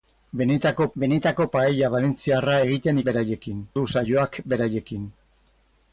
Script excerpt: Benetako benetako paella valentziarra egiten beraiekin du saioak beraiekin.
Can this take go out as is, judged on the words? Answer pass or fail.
pass